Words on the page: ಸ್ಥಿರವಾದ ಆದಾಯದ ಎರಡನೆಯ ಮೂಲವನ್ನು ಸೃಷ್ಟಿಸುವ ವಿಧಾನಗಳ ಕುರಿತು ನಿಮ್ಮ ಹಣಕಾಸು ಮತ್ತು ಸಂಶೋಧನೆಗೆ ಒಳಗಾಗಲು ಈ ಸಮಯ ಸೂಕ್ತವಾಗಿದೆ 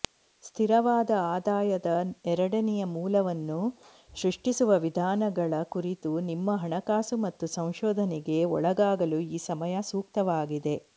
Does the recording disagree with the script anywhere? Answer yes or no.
no